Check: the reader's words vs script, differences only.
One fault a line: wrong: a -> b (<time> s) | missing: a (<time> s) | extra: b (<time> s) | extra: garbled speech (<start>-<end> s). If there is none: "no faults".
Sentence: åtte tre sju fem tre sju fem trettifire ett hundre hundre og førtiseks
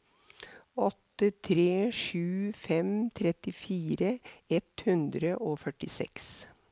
missing: tre sju fem (3.1 s)
missing: hundre (5.4 s)